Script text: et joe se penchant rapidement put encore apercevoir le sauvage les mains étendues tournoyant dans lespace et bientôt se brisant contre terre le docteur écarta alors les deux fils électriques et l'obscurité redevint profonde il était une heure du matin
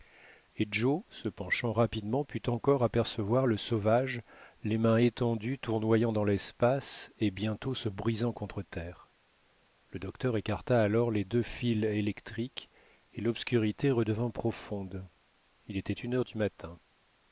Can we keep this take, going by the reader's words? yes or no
yes